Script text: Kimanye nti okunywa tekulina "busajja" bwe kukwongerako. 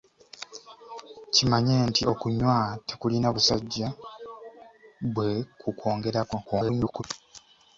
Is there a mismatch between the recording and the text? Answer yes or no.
yes